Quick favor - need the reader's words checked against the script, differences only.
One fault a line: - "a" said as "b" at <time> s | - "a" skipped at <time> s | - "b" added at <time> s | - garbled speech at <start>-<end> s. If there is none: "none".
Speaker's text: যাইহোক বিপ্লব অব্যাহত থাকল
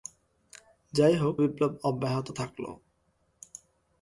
none